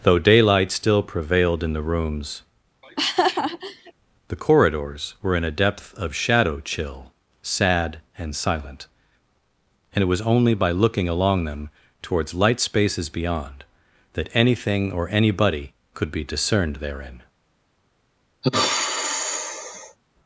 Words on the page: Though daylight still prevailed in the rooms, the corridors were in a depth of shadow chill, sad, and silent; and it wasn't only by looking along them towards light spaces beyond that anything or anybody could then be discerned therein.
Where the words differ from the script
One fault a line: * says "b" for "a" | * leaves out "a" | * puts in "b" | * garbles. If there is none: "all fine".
* says "was" for "wasn't"
* leaves out "then"